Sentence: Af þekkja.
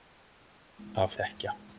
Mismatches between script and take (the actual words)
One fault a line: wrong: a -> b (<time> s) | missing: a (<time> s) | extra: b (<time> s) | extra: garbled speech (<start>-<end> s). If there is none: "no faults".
no faults